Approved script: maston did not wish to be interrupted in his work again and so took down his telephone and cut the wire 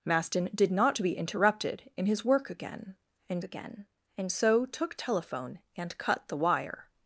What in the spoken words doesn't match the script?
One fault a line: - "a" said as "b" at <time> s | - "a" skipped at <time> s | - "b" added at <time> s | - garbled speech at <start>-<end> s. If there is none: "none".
- "wish" skipped at 1.0 s
- "again and" added at 3.4 s
- "down his" skipped at 5.0 s